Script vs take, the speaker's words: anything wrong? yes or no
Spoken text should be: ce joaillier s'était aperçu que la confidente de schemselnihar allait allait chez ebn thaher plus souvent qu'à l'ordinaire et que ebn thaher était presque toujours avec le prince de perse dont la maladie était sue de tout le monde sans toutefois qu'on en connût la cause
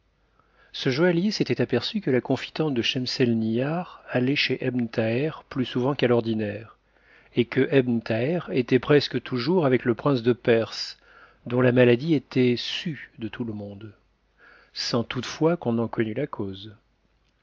yes